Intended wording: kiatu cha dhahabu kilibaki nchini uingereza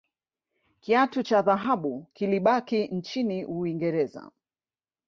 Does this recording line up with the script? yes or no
yes